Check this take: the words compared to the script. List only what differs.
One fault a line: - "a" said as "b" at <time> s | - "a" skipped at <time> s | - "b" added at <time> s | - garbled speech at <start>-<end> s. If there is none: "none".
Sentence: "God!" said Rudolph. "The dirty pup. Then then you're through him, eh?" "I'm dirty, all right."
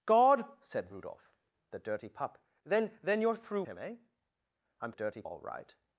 none